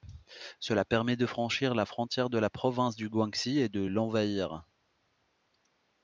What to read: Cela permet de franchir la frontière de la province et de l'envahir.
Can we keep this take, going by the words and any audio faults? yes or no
no